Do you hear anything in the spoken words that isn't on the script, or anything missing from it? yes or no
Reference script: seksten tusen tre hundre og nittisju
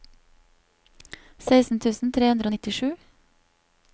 no